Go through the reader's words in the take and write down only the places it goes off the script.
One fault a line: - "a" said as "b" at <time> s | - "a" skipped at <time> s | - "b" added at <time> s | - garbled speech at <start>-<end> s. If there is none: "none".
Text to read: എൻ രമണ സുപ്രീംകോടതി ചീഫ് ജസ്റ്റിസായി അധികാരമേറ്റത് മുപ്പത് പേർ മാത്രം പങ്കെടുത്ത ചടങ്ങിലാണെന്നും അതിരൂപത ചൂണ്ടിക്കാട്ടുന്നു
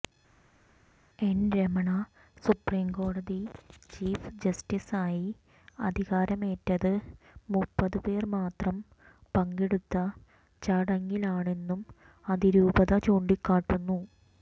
none